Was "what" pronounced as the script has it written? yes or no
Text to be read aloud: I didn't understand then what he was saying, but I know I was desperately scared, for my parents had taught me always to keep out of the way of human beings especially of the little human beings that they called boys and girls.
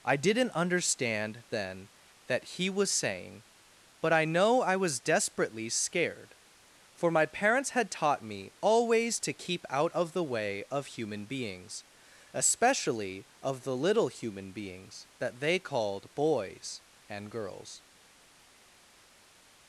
no